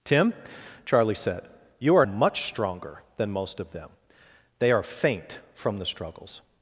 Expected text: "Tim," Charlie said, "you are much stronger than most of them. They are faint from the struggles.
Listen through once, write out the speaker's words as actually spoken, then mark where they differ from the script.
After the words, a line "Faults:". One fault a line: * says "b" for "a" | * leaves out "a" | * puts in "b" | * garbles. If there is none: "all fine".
"Tim," Charlie said, "you are much stronger than most of them. They are faint from the struggles.
Faults:
all fine